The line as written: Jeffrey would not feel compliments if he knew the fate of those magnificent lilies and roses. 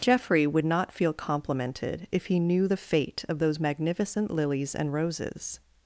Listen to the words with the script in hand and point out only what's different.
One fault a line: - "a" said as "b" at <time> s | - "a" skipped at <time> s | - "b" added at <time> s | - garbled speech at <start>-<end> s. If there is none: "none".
- "compliments" said as "complimented" at 1.1 s